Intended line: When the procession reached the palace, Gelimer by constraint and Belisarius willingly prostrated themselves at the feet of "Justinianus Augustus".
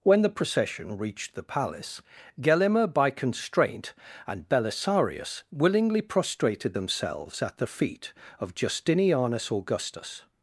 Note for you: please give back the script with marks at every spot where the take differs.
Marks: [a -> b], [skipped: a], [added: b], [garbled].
When the procession reached the palace, Gelimer by constraint and Belisarius willingly prostrated themselves at the feet of "Justinianus Augustus".